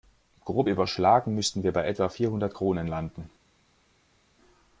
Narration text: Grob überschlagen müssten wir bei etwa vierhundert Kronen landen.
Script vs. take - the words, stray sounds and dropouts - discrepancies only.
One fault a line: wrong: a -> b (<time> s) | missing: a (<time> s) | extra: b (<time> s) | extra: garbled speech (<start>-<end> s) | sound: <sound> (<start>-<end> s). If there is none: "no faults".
no faults